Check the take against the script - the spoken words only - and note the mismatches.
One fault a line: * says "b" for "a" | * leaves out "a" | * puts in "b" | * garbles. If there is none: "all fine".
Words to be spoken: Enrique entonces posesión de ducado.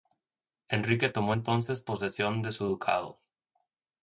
* puts in "tomó"
* puts in "su"